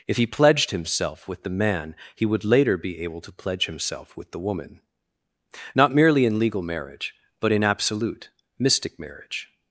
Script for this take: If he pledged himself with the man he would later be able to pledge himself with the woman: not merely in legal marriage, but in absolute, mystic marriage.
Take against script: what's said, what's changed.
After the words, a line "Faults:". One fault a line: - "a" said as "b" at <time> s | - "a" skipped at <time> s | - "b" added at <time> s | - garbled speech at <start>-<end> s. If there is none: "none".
If he pledged himself with the man he would later be able to pledge himself with the woman: not merely in legal marriage, but in absolute, mystic marriage.
Faults:
none